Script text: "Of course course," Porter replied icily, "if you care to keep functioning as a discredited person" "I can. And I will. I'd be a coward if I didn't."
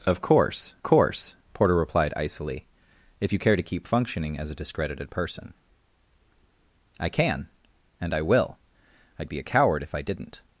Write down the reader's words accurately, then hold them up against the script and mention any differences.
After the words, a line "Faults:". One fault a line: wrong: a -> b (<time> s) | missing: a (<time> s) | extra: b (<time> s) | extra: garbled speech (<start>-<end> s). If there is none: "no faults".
"Of course course," Porter replied icily, "if you care to keep functioning as a discredited person" "I can. And I will. I'd be a coward if I didn't."
Faults:
no faults